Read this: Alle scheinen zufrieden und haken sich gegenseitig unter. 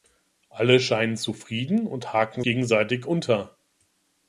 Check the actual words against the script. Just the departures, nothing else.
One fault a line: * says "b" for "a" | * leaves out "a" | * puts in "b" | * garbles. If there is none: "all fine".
* leaves out "sich"